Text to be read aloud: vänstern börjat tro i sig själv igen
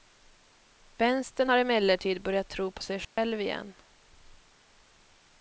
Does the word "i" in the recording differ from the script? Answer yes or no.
yes